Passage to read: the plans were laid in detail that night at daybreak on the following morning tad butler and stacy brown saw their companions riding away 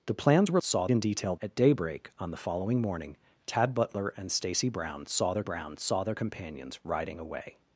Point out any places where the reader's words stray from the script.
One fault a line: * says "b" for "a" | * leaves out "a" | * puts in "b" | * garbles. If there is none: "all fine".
* says "saw" for "laid"
* leaves out "that night"
* puts in "brown saw their"